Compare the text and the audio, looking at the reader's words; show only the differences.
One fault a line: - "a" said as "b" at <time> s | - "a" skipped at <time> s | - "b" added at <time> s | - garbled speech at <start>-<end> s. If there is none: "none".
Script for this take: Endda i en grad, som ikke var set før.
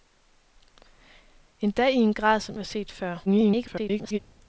- "ikke" skipped at 2.6 s
- garbled speech at 3.3-4.2 s